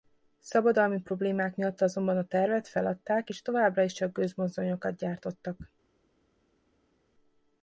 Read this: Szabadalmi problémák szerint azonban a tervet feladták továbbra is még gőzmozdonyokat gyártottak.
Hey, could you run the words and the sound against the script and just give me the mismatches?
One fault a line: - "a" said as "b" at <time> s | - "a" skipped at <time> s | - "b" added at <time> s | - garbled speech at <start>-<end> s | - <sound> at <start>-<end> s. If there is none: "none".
- "szerint" said as "miatt" at 1.6 s
- "és" added at 3.3 s
- "még" said as "csak" at 3.9 s